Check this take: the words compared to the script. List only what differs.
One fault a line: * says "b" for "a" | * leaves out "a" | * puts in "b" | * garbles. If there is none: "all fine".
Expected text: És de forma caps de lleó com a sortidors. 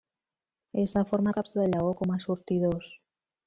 all fine